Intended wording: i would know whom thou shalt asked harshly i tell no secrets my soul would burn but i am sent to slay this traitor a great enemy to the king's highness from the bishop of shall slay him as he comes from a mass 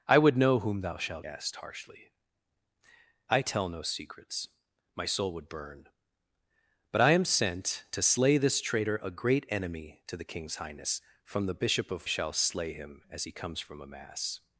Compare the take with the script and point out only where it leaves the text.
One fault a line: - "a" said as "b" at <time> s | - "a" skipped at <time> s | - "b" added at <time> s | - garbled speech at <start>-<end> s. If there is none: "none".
none